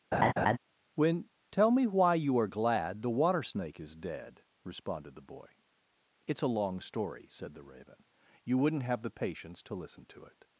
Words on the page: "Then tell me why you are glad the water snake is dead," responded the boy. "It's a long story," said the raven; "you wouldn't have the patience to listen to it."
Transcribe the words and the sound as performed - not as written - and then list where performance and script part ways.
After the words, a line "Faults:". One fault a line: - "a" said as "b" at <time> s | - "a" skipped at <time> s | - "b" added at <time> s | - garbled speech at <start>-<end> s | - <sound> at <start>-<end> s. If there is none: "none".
"When tell me why you are glad the water snake is dead," responded the boy. "It's a long story," said the raven; "you wouldn't have the patience to listen to it."
Faults:
- laugh at 0.1-0.6 s
- "Then" said as "When" at 1.0 s